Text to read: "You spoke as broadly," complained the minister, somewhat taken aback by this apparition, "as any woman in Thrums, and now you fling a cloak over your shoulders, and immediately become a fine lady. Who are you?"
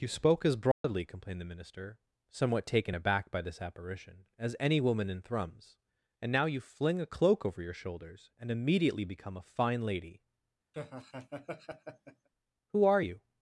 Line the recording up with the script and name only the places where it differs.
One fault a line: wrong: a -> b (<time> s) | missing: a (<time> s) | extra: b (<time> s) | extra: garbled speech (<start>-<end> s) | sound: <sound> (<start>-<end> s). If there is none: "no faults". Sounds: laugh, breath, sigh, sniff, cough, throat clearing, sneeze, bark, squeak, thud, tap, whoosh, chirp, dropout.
sound: dropout (0.7-0.8 s)
sound: laugh (10.7-12.3 s)